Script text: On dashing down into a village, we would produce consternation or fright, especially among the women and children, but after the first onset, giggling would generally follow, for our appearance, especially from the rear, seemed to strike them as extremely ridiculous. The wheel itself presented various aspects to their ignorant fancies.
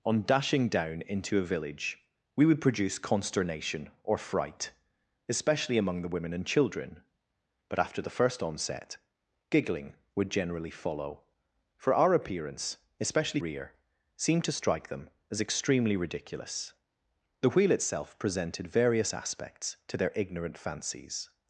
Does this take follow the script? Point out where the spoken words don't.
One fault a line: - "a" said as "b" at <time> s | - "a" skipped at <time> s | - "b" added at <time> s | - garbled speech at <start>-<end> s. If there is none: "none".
- "from the" skipped at 13.4 s